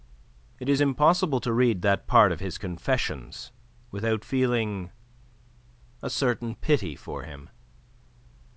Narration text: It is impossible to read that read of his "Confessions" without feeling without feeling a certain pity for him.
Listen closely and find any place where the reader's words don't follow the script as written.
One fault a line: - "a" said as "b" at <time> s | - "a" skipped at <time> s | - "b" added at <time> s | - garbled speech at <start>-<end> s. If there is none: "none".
- "read" said as "part" at 2.1 s
- "without feeling" skipped at 4.9 s